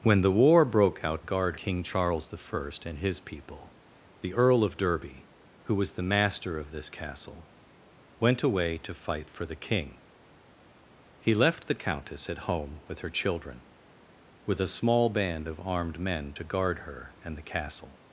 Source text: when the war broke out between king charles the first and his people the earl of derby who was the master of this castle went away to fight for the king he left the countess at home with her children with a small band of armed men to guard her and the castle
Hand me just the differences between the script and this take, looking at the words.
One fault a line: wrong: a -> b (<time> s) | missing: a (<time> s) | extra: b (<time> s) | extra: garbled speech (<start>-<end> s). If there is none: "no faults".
wrong: between -> guard (1.2 s)